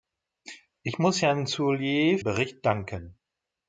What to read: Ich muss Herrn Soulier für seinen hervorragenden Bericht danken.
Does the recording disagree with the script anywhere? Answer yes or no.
yes